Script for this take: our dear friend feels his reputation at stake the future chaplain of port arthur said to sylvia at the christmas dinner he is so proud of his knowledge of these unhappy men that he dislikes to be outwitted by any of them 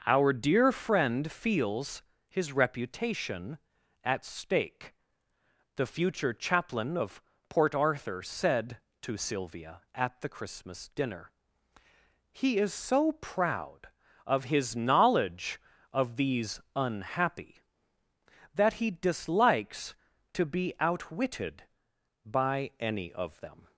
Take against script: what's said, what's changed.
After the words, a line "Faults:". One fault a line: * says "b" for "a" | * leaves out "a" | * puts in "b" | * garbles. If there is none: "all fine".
our dear friend feels his reputation at stake the future chaplain of port arthur said to sylvia at the christmas dinner he is so proud of his knowledge of these unhappy that he dislikes to be outwitted by any of them
Faults:
* leaves out "men"